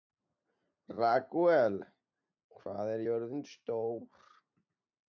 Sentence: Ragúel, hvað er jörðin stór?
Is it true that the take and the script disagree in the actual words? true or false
false